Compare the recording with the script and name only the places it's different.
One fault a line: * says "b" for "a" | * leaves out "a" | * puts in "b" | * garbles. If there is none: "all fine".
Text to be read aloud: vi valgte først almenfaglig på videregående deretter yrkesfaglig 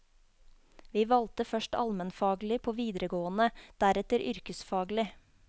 all fine